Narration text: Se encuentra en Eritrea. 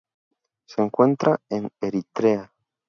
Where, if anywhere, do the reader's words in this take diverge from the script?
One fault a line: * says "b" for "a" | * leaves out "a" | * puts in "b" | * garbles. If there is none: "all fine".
all fine